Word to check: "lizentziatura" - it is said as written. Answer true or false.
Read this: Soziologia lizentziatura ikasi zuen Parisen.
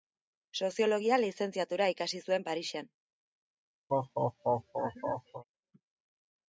true